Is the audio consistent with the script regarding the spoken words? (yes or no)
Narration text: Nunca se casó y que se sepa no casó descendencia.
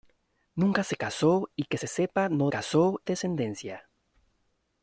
yes